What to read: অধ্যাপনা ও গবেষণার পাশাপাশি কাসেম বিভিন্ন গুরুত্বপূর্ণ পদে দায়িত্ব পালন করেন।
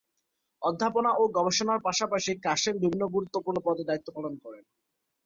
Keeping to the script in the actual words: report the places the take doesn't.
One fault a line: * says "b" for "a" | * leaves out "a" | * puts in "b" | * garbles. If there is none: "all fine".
all fine